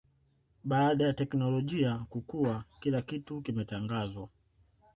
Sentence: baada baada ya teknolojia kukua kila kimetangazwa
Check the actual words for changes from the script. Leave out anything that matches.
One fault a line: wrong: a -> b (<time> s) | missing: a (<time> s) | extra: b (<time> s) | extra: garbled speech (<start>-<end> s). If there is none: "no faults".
missing: baada (1.1 s)
extra: kitu (3.0 s)